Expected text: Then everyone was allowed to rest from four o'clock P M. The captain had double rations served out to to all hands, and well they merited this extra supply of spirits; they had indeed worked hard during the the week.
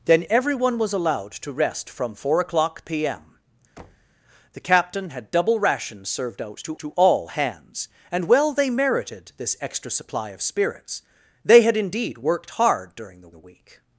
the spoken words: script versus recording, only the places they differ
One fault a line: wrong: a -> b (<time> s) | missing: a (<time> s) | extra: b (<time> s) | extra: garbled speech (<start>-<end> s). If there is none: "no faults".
no faults